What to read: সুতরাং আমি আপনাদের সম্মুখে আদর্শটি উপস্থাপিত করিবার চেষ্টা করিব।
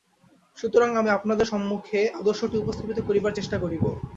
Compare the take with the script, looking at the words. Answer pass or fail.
pass